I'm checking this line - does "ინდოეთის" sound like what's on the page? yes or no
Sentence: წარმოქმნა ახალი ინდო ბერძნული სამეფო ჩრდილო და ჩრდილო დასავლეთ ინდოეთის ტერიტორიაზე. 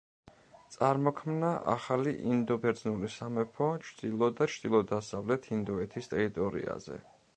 yes